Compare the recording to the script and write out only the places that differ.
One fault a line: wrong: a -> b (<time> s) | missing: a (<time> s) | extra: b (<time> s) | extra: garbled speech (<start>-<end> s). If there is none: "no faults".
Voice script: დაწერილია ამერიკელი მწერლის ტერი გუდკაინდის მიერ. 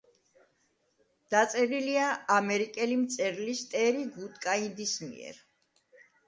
no faults